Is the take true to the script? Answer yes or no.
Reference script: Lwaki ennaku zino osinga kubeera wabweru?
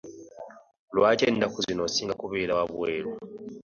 yes